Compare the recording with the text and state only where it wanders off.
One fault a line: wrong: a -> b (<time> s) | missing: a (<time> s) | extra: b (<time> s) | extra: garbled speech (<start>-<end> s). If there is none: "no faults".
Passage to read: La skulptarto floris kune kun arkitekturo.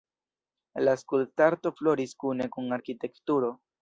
no faults